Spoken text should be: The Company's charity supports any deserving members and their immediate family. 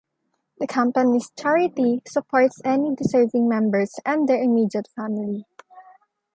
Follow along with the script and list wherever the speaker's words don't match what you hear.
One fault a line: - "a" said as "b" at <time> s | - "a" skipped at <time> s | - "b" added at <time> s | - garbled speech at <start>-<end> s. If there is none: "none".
none